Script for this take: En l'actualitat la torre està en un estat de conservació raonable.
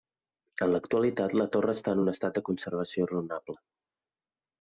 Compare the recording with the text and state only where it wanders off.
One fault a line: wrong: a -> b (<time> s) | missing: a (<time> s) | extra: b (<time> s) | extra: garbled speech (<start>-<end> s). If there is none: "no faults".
no faults